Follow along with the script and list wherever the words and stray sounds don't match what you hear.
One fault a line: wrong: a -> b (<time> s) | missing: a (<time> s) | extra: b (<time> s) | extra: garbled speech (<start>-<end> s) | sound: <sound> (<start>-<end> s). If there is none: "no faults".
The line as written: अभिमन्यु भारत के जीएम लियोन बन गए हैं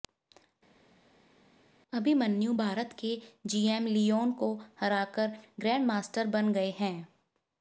extra: को हराकर ग्रैंडमास्टर (4.3 s)